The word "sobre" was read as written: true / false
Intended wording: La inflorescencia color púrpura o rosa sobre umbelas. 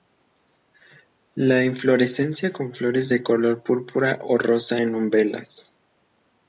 false